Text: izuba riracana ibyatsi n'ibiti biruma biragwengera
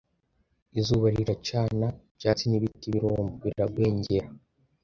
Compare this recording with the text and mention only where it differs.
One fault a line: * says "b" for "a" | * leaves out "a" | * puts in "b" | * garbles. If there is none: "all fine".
all fine